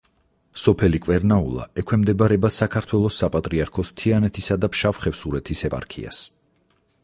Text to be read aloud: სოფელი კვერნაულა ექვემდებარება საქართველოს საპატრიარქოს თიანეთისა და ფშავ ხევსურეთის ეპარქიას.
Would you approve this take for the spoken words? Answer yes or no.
yes